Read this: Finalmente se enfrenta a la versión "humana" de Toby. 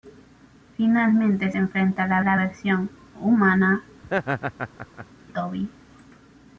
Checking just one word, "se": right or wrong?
wrong